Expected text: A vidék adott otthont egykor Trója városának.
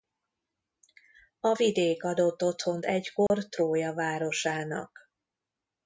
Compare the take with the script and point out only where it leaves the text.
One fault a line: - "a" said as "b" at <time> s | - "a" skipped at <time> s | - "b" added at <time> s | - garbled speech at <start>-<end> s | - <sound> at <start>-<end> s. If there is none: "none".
- dropout at 3.3-3.3 s